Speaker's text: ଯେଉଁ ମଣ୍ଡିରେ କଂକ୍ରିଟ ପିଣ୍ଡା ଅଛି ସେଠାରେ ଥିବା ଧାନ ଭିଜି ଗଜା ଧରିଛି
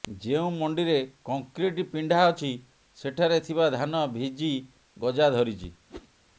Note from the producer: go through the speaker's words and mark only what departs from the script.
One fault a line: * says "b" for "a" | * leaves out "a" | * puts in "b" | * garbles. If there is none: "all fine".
all fine